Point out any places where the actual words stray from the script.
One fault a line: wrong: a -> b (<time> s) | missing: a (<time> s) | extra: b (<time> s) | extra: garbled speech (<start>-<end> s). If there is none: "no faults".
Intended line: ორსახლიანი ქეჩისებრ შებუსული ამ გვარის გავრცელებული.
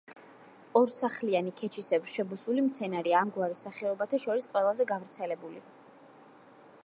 extra: მცენარეა (2.7 s)
extra: სახეობათა შორის ყველაზე (3.7 s)